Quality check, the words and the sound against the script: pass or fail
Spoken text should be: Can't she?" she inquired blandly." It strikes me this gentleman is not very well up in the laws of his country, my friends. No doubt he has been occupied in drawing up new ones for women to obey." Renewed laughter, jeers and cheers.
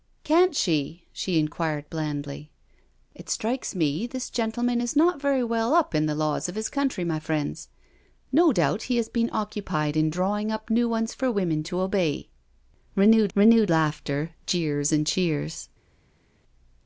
fail